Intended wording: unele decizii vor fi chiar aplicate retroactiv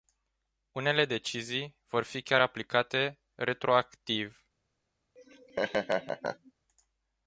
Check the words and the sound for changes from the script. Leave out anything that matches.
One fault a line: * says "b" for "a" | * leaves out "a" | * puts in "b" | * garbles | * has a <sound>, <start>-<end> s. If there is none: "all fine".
* has a laugh, 5.2-6.5 s